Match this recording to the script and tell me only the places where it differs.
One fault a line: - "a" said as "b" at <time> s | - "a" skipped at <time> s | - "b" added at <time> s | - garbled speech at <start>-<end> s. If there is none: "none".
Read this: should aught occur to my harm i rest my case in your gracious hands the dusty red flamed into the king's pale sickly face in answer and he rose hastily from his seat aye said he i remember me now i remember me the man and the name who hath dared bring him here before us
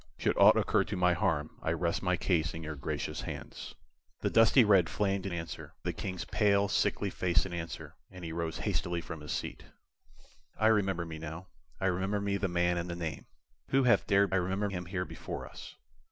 - "into" said as "answer" at 5.3 s
- "aye said he" skipped at 9.7 s
- "bring" said as "remember" at 14.3 s